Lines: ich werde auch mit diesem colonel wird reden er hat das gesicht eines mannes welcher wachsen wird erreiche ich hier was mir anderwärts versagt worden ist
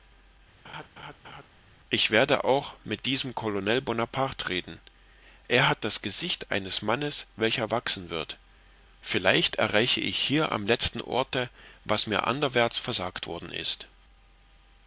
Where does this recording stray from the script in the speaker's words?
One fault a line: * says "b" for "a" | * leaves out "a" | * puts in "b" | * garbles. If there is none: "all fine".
* says "bonaparte" for "wird"
* puts in "vielleicht"
* puts in "am letzten orte"